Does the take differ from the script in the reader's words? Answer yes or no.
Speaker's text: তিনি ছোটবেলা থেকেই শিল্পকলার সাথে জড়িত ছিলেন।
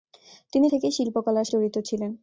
yes